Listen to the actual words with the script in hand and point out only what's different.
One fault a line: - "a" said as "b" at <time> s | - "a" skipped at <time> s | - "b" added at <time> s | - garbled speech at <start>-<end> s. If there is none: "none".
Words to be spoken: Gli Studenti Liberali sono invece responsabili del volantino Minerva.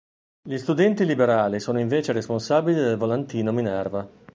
none